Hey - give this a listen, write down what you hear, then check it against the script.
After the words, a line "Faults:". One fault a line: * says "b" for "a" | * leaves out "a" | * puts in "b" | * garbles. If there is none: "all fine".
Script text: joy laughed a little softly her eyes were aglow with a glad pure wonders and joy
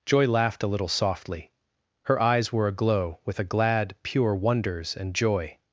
joy laughed a little softly her eyes were aglow with a glad pure wonders and joy
Faults:
all fine